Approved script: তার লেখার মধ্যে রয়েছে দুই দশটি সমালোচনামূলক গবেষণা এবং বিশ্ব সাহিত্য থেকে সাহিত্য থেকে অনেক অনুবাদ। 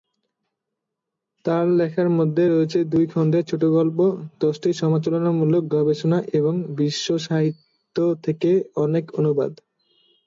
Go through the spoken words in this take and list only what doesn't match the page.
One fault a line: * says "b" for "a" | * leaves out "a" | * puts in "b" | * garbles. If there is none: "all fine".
* puts in "খণ্ডের ছোটগল্প"
* leaves out "সাহিত্য থেকে"